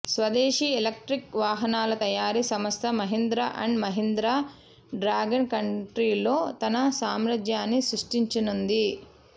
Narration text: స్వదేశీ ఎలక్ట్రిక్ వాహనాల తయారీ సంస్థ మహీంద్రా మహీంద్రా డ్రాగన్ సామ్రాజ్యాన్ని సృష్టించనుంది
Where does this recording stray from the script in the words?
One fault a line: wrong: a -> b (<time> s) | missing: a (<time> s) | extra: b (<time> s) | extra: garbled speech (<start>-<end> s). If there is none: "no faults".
extra: అండ్ (3.6 s)
extra: కంట్రీలో తన (5.5 s)